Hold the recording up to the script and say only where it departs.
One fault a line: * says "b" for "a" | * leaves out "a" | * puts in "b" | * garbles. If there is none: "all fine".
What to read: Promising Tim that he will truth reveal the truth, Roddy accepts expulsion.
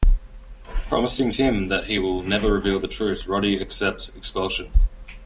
* says "never" for "truth"